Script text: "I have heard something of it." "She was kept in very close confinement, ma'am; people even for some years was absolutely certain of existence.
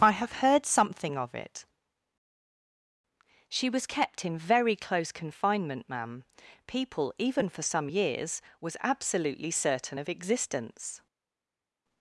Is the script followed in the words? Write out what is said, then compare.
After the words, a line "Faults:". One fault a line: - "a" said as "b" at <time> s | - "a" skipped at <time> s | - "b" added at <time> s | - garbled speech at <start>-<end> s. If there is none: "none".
"I have heard something of it." "She was kept in very close confinement, ma'am; people even for some years was absolutely certain of existence.
Faults:
none